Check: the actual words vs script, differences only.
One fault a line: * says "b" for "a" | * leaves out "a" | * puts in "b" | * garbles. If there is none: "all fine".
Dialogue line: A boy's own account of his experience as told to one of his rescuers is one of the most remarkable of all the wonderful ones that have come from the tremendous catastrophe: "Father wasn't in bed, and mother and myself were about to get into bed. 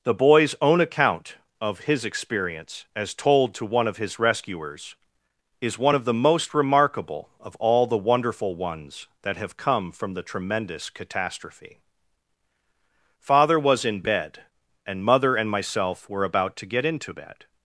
* says "The" for "A"
* says "was" for "wasn't"